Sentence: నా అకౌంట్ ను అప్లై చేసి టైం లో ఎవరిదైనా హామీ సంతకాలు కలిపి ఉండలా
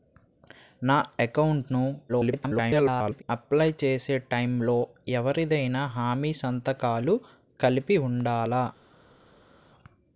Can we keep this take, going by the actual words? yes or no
no